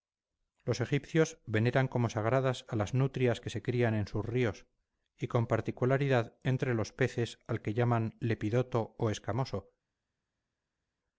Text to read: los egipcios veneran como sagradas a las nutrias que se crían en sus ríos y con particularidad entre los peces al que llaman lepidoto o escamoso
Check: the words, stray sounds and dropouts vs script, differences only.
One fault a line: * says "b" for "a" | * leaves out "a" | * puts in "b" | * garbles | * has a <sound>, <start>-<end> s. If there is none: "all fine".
all fine